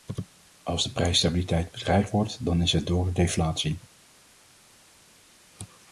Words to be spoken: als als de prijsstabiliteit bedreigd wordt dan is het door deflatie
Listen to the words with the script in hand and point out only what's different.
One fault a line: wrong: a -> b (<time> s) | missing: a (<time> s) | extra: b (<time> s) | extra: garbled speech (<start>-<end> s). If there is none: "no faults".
missing: als (0.8 s)